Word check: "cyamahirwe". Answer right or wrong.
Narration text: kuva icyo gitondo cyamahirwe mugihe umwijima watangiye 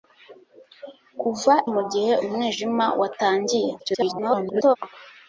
wrong